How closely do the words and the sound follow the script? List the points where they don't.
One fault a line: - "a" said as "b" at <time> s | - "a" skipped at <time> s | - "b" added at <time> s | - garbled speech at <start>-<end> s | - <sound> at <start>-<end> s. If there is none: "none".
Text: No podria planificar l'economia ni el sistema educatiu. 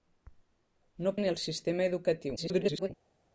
- "podria planificar l'economia" skipped at 1.2 s
- garbled speech at 2.4-2.9 s